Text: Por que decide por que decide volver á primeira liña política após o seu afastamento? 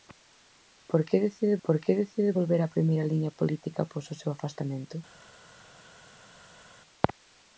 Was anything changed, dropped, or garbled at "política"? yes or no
no